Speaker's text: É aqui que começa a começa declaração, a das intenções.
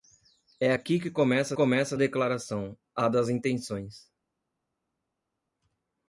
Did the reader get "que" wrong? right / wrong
right